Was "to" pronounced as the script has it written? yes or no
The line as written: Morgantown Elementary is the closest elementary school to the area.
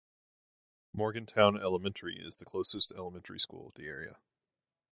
no